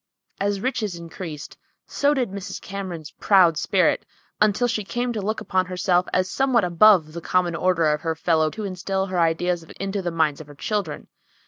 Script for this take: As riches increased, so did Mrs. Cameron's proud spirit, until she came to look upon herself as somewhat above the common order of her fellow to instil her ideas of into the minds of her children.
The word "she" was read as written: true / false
true